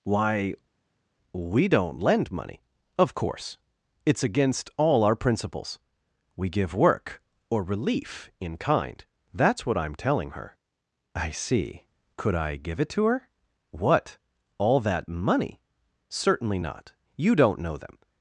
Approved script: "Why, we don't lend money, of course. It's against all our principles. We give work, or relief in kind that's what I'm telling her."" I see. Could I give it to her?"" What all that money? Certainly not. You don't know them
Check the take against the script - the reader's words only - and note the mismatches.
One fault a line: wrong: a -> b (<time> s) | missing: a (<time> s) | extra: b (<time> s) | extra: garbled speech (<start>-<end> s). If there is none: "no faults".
no faults